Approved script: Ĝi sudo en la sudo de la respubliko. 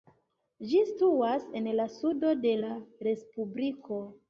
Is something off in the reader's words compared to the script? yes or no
yes